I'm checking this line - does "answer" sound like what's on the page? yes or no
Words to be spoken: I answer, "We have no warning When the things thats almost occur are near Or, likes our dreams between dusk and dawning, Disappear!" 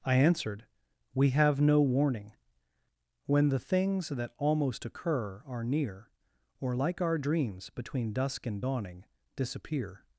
no